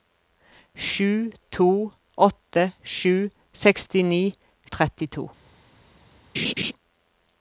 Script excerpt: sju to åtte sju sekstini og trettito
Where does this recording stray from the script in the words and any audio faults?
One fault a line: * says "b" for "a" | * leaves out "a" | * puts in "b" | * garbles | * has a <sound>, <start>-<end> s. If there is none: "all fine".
* has a laugh, 6.3-6.7 s